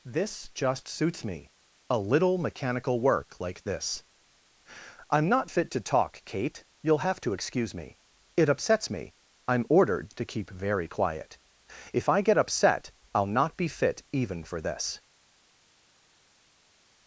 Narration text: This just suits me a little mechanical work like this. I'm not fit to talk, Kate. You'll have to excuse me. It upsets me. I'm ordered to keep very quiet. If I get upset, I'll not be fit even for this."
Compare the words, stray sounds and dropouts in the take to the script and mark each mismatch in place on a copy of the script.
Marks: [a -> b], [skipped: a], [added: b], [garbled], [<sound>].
This just suits me a little mechanical work like this. I'm not fit to talk, Kate. You'll have to excuse me. It upsets me. I'm ordered to keep very quiet. If I get upset, I'll not be fit even for this."